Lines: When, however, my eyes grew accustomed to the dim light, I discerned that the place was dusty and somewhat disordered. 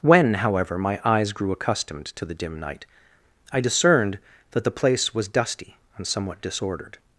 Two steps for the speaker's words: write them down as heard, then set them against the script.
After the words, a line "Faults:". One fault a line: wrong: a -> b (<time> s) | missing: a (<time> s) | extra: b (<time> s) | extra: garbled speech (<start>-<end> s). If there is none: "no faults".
When, however, my eyes grew accustomed to the dim night, I discerned that the place was dusty and somewhat disordered.
Faults:
wrong: light -> night (2.6 s)